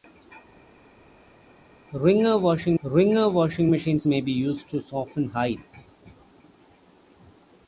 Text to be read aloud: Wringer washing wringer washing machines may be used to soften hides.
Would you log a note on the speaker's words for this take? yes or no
no